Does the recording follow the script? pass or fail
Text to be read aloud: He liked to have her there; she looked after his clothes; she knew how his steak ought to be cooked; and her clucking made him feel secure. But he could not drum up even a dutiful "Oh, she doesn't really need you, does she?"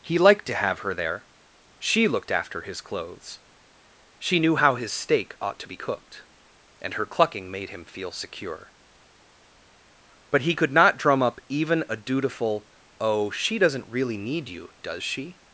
pass